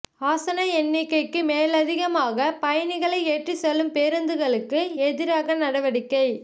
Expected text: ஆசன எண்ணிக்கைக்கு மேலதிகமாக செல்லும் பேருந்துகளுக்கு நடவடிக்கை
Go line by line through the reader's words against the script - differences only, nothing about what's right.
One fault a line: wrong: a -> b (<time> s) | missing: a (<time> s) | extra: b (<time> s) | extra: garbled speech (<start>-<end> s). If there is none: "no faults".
extra: பயணிகளை ஏற்றிச் (2.6 s)
extra: எதிராக (5.0 s)